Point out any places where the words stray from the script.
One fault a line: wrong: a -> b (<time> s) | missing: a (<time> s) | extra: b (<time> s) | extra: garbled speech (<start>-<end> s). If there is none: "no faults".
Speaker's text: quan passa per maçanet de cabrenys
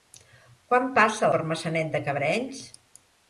no faults